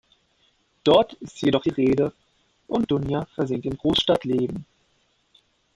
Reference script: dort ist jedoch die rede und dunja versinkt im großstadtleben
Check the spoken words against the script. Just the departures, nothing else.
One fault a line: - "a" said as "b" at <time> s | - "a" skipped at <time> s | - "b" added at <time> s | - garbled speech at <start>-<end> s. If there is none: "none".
none